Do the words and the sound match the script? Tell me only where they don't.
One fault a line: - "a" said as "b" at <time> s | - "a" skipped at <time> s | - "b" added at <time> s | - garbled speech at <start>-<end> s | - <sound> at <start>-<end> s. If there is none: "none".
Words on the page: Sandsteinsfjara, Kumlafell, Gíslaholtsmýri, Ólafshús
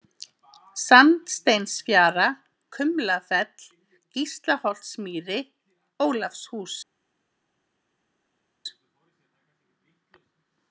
none